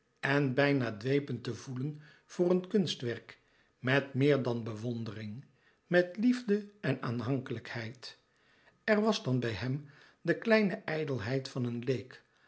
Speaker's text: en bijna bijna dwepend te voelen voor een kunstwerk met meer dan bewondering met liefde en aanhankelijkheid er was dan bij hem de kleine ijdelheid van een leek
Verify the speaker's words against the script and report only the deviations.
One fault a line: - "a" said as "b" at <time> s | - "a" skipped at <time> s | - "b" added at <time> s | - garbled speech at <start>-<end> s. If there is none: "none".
- "bijna" skipped at 1.0 s